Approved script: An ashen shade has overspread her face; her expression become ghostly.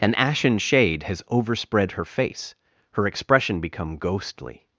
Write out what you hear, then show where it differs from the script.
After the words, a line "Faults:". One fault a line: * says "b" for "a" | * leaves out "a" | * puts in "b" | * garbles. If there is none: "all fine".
An ashen shade has overspread her face; her expression become ghostly.
Faults:
all fine